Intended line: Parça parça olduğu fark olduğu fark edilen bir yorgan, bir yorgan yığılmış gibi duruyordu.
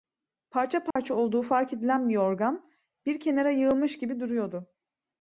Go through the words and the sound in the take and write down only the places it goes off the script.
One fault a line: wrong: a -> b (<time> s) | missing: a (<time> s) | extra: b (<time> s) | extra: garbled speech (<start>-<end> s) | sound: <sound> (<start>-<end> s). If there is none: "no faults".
sound: dropout (0.9-1.0 s)
missing: olduğu fark (1.7 s)
wrong: yorgan -> kenara (3.2 s)